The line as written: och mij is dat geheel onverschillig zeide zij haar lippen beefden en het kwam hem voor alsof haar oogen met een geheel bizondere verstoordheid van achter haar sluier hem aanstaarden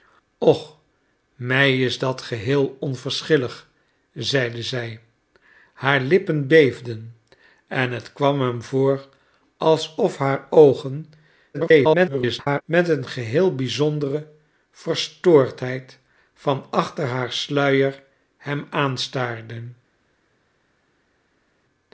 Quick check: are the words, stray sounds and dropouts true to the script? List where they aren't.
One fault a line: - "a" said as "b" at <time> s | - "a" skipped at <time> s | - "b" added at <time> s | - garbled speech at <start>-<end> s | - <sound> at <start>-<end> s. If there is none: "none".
- garbled speech at 11.5-12.6 s